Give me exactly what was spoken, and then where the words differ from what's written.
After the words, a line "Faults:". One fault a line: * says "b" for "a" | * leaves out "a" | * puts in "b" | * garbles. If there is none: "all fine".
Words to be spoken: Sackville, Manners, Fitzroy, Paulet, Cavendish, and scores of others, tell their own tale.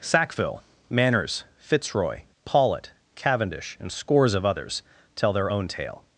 Sackville, Manners, Fitzroy, Paulet, Cavendish, and scores of others, tell their own tale.
Faults:
all fine